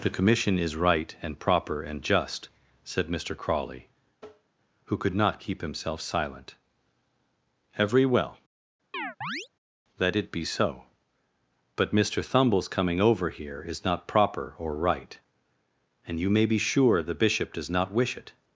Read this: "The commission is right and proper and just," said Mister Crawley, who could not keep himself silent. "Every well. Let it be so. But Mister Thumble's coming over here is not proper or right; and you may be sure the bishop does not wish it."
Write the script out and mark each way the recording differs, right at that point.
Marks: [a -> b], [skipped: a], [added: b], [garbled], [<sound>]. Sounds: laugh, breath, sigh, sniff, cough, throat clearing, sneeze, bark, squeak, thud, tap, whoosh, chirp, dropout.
"The commission is right and proper and just," said Mister Crawley, [tap] who could not keep himself silent. "Every well. [chirp] Let it be so. But Mister Thumble's coming over here is not proper or right; and you may be sure the bishop does not wish it."